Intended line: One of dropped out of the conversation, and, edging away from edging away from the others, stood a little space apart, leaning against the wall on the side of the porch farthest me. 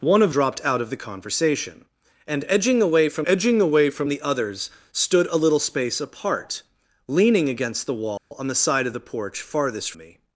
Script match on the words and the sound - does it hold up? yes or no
no